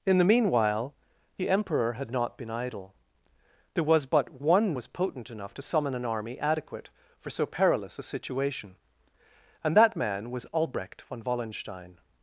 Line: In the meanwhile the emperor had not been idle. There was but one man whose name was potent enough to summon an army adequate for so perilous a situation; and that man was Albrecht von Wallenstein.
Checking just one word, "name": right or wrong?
wrong